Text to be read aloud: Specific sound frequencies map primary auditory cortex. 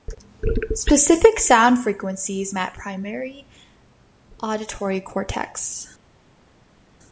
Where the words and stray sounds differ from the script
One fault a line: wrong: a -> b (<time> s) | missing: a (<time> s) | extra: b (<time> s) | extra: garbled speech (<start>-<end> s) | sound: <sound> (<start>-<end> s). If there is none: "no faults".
no faults